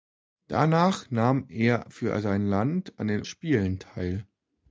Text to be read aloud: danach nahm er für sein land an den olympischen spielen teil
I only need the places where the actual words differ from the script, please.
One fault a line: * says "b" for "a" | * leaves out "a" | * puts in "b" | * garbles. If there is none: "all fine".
* leaves out "olympischen"